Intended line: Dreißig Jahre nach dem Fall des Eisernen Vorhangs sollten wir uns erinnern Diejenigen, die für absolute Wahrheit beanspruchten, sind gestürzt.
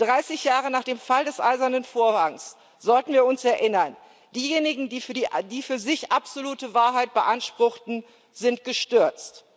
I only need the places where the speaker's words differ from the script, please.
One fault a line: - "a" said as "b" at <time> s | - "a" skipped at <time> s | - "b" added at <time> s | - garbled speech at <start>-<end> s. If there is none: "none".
- "sich" added at 5.8 s